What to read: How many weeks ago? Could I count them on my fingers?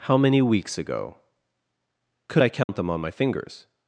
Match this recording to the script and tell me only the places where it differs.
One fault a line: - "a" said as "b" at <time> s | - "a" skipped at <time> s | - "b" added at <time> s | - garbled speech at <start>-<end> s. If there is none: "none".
none